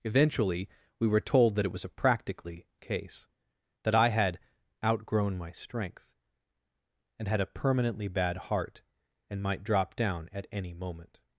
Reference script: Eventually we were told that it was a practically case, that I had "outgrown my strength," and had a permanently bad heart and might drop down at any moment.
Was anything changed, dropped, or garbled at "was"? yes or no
no